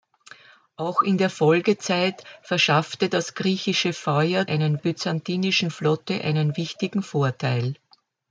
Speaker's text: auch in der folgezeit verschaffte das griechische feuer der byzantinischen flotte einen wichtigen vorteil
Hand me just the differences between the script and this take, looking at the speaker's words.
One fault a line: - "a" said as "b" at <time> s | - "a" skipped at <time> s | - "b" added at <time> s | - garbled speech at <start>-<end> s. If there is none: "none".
- "der" said as "einen" at 4.5 s